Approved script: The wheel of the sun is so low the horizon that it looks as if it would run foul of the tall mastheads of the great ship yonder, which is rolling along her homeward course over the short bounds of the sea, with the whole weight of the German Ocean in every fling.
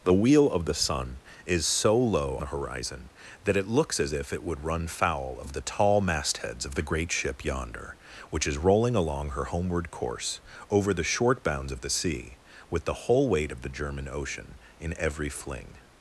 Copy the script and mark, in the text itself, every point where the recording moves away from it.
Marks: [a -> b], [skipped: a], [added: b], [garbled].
The wheel of the sun is so low the horizon that it looks as if it would run foul of the tall mastheads of the great ship yonder, which is rolling along her homeward course over the short bounds of the sea, with the whole weight of the German Ocean in every fling.